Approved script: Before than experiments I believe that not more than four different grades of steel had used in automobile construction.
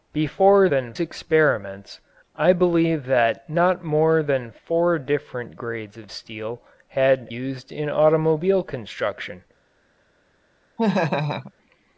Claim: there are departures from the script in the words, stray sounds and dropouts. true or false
true